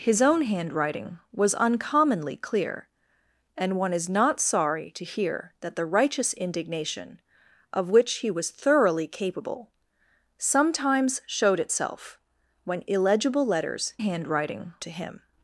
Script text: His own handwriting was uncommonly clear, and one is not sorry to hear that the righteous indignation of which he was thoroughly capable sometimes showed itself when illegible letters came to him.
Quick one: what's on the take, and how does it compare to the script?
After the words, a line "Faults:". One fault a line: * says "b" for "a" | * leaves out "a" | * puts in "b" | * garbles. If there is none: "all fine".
His own handwriting was uncommonly clear, and one is not sorry to hear that the righteous indignation of which he was thoroughly capable sometimes showed itself when illegible letters handwriting to him.
Faults:
* says "handwriting" for "came"